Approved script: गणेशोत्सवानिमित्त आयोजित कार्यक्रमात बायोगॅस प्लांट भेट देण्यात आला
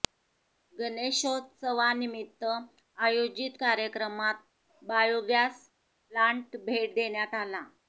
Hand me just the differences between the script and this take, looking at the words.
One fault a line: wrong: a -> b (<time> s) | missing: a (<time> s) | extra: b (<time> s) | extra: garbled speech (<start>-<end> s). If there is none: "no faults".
no faults